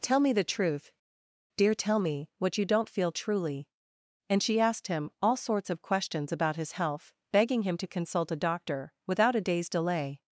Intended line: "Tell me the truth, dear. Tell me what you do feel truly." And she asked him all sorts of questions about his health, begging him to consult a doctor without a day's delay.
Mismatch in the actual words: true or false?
true